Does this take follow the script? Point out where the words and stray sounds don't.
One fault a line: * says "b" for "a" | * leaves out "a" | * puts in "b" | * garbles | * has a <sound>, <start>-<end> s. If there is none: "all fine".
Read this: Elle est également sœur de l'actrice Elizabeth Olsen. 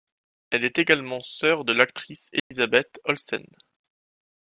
* has a dropout, 2.4-2.5 s